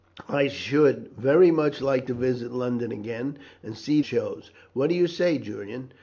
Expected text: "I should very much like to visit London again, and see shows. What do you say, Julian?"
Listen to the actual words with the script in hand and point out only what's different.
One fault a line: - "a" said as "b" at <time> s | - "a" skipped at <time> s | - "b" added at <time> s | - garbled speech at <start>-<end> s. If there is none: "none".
none